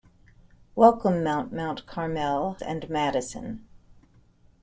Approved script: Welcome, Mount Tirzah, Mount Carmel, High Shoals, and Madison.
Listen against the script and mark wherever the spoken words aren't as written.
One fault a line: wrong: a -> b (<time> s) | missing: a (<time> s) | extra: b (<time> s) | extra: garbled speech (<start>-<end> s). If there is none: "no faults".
missing: Tirzah (1.5 s)
missing: High Shoals (2.5 s)